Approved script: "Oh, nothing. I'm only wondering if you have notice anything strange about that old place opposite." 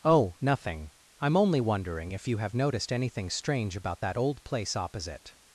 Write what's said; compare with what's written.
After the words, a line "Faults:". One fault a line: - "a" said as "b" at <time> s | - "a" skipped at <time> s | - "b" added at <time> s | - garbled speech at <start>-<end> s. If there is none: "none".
"Oh, nothing. I'm only wondering if you have noticed anything strange about that old place opposite."
Faults:
- "notice" said as "noticed" at 2.5 s